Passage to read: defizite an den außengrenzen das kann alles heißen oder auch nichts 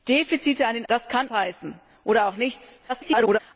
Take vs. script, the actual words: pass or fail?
fail